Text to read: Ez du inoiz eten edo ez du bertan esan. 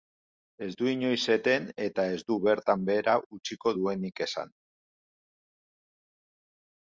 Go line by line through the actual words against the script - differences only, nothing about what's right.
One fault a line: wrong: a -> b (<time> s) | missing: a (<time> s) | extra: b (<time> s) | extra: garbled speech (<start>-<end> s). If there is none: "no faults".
wrong: edo -> eta (1.9 s)
extra: behera utziko duenik (2.9 s)